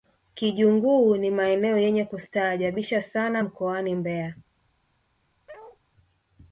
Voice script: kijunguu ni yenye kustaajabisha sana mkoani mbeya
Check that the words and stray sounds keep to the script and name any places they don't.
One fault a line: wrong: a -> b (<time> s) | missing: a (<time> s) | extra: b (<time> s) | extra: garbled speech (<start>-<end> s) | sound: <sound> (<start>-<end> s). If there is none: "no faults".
extra: maeneo (1.3 s)
sound: bark (5.5-5.8 s)